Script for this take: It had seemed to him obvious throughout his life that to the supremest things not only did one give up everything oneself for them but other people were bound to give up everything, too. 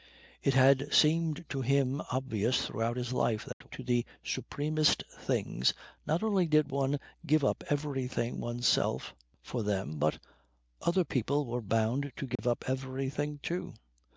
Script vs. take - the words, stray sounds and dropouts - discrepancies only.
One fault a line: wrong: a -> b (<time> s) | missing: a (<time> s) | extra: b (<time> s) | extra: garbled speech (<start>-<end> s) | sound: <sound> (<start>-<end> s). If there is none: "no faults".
sound: dropout (3.5-3.6 s)
sound: dropout (12.4-12.4 s)